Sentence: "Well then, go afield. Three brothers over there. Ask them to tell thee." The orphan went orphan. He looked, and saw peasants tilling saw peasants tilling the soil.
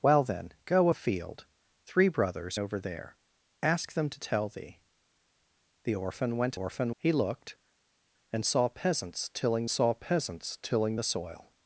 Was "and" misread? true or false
false